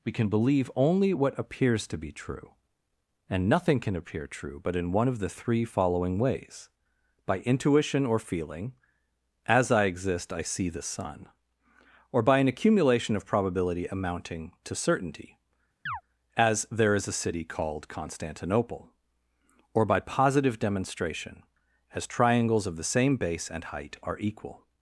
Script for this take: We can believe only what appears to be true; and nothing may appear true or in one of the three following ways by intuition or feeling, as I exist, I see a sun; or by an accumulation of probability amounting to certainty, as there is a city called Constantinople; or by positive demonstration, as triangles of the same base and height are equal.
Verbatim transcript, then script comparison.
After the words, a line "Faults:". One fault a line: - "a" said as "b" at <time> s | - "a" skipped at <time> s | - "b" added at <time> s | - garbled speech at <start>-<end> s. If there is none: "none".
We can believe only what appears to be true; and nothing can appear true but in one of the three following ways by intuition or feeling, as I exist, I see the sun; or by an accumulation of probability amounting to certainty, as there is a city called Constantinople; or by positive demonstration, as triangles of the same base and height are equal.
Faults:
- "may" said as "can" at 3.8 s
- "or" said as "but" at 4.6 s
- "a" said as "the" at 10.7 s